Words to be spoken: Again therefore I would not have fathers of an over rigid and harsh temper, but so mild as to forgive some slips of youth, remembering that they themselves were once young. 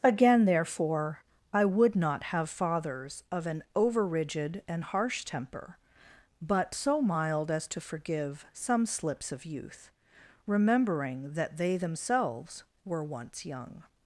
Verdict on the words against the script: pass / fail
pass